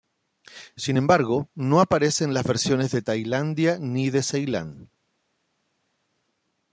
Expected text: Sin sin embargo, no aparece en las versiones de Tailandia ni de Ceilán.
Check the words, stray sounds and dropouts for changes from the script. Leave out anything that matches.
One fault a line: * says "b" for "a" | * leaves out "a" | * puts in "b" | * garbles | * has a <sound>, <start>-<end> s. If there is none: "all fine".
* leaves out "sin"